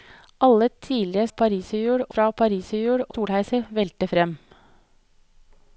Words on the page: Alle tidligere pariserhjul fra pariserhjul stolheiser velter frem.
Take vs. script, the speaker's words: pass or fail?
pass